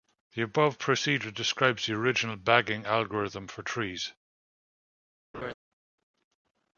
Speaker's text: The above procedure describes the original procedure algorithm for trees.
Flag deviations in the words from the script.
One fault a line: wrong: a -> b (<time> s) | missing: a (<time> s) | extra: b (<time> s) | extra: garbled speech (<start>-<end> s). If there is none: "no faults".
wrong: procedure -> bagging (2.4 s)